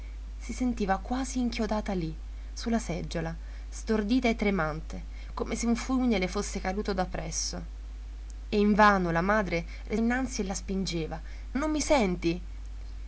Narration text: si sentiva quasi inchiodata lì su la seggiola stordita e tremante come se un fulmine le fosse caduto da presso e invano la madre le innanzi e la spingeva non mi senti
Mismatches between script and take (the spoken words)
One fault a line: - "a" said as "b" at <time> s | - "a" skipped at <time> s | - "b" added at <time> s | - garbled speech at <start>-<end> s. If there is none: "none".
none